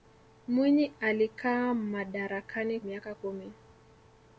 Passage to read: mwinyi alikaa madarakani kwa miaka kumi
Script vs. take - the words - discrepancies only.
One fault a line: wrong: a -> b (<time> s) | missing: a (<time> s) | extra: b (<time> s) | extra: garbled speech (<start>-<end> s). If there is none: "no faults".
missing: kwa (2.8 s)